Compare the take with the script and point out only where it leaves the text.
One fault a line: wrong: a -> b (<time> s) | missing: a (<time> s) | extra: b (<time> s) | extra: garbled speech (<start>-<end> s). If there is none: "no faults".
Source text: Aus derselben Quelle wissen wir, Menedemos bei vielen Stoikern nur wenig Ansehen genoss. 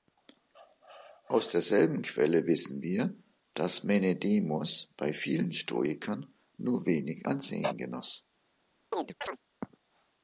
extra: dass (3.5 s)